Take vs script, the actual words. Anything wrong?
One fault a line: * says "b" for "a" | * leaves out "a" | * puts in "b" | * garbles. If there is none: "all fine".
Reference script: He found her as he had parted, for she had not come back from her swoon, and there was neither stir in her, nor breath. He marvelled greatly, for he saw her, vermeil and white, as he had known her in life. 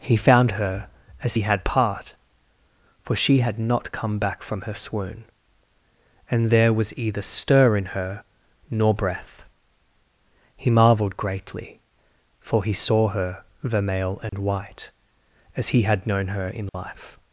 * says "part" for "parted"
* says "either" for "neither"